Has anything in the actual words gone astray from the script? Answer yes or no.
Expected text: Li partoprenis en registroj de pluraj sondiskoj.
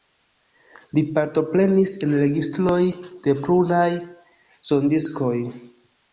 no